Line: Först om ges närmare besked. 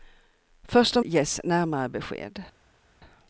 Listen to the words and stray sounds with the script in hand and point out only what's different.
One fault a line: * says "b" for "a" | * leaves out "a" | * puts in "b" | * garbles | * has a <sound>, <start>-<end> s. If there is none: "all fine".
all fine